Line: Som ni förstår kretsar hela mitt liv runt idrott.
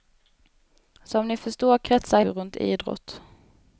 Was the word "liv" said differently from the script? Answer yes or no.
yes